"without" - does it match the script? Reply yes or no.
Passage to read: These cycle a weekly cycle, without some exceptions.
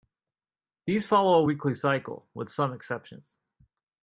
no